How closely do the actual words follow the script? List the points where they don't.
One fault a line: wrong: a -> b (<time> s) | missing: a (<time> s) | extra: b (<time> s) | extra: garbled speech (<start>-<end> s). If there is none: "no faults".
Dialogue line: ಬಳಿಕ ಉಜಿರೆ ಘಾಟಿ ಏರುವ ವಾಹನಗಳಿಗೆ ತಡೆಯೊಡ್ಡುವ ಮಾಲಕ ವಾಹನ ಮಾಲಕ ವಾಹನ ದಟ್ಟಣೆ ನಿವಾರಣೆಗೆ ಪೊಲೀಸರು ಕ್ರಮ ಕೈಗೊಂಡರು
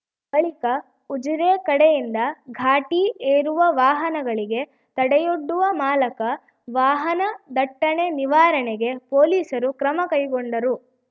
extra: ಕಡೆಯಿಂದ (1.7 s)
missing: ಮಾಲಕ ವಾಹನ (7.2 s)